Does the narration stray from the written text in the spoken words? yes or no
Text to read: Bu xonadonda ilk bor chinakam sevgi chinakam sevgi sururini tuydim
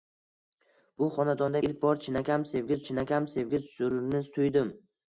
no